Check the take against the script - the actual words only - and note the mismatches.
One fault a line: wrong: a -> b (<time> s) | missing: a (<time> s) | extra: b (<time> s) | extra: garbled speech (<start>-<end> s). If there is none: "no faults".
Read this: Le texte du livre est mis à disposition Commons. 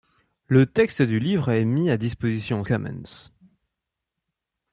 no faults